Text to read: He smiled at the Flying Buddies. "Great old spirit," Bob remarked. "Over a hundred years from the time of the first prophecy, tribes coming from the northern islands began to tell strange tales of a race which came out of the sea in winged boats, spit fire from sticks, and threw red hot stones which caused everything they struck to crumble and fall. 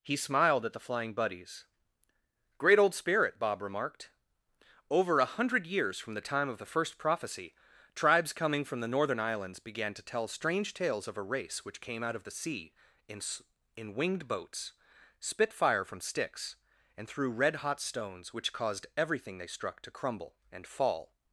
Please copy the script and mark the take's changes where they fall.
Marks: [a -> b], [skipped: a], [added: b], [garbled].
He smiled at the Flying Buddies. "Great old spirit," Bob remarked. "Over a hundred years from the time of the first prophecy, tribes coming from the northern islands began to tell strange tales of a race which came out of the sea in [added: in] winged boats, spit fire from sticks, and threw red hot stones which caused everything they struck to crumble and fall.